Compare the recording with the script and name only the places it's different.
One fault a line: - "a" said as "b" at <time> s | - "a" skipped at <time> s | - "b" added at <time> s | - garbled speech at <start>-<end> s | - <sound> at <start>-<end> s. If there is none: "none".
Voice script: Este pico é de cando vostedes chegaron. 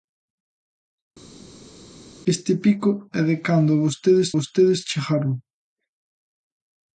- "vostedes" added at 4.3 s